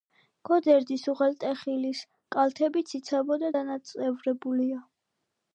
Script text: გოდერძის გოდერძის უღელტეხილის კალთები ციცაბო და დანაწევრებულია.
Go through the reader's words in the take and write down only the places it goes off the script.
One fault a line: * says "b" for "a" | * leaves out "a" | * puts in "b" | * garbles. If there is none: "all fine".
* leaves out "გოდერძის"